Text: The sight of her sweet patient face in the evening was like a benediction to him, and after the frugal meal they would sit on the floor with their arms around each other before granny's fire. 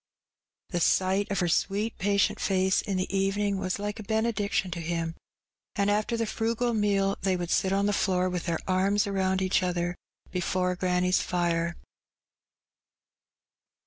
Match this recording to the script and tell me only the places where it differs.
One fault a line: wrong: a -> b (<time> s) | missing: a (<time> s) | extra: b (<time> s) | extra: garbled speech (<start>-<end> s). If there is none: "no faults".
no faults